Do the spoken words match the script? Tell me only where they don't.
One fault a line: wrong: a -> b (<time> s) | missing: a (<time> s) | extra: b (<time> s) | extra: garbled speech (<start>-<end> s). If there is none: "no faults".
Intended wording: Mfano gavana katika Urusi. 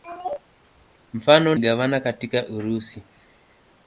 no faults